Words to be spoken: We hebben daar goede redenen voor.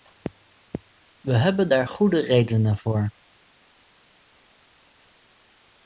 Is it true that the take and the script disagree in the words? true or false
false